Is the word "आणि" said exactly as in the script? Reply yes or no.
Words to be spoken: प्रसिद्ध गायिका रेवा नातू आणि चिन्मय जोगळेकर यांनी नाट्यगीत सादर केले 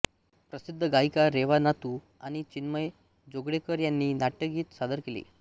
yes